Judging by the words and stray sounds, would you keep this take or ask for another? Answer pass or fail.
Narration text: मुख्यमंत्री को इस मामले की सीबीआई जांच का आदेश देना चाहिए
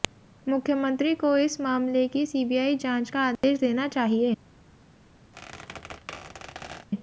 fail